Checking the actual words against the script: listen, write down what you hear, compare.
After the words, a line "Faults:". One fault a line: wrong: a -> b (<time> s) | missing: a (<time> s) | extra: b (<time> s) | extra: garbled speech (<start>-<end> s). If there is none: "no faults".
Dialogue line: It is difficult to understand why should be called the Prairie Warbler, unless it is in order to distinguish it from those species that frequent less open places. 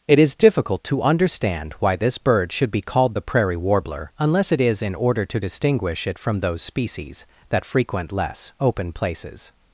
It is difficult to understand why this bird should be called the Prairie Warbler, unless it is in order to distinguish it from those species that frequent less open places.
Faults:
extra: this bird (2.0 s)